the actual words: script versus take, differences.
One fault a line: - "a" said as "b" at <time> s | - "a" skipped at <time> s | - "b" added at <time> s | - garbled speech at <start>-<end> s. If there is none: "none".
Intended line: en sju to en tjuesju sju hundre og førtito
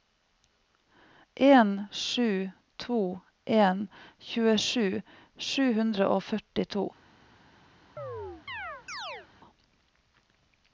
none